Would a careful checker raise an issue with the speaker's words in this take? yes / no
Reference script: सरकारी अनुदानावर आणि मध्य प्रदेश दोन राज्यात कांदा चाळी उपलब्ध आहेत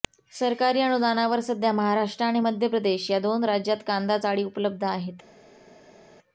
yes